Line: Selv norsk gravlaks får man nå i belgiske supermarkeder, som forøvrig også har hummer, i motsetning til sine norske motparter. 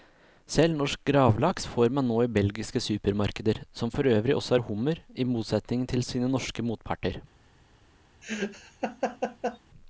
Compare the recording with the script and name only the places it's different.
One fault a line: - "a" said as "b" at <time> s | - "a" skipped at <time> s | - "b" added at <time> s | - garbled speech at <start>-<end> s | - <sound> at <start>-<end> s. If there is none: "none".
- laugh at 8.2-9.6 s